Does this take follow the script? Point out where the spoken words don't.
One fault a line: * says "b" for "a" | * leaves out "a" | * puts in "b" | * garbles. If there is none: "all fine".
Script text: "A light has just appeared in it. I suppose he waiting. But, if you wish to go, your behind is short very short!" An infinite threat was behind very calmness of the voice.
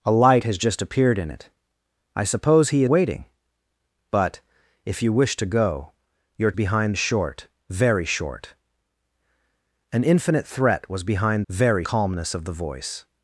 all fine